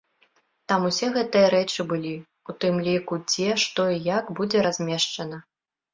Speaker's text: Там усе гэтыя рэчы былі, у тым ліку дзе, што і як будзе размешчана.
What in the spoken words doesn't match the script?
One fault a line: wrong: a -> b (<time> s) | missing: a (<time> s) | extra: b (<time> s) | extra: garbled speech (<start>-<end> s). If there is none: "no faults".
no faults